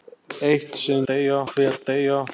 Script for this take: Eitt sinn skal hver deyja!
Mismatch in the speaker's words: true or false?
true